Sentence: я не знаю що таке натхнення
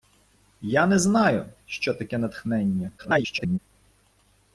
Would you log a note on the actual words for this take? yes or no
yes